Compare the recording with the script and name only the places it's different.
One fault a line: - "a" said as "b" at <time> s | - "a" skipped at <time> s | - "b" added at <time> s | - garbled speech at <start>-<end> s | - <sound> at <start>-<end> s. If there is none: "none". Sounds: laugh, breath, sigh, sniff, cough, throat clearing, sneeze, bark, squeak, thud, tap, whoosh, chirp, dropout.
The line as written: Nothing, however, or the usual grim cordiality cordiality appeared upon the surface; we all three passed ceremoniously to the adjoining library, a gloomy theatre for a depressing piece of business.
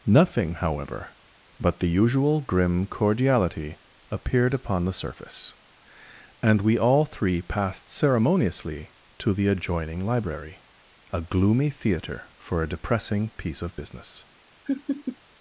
- "or" said as "but" at 1.6 s
- "cordiality" skipped at 3.8 s
- "and" added at 6.4 s
- laugh at 14.7-15.2 s